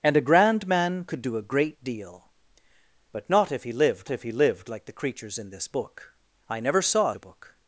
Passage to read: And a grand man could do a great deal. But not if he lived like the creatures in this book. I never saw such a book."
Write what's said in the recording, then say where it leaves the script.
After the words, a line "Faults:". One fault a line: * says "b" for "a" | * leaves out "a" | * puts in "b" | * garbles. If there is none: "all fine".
And a grand man could do a great deal. But not if he lived if he lived like the creatures in this book. I never saw a book."
Faults:
* puts in "if he lived"
* leaves out "such"